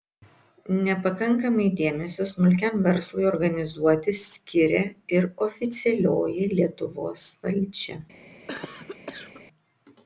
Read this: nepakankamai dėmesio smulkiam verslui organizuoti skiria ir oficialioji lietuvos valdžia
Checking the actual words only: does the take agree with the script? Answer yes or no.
yes